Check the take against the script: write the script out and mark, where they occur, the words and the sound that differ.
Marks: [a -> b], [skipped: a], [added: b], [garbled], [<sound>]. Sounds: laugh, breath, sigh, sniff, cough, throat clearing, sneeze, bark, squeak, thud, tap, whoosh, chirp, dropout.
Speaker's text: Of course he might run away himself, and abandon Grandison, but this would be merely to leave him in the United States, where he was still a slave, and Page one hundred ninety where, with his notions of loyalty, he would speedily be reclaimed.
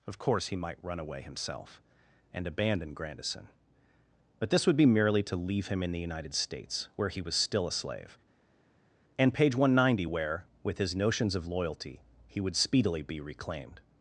Of course he might run away himself, and abandon Grandison, but this would be merely to leave him in the United States, where he was still a slave, and Page one hundred ninety where, with his notions of loyalty, he would speedily be reclaimed.